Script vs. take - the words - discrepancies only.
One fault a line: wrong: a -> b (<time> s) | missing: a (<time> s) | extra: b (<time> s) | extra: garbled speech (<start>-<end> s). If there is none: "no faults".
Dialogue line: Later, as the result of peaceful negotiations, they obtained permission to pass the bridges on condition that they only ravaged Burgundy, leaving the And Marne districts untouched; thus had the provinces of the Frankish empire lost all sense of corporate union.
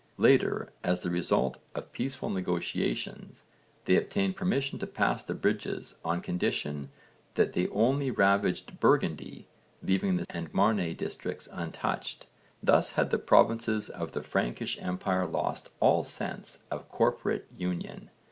no faults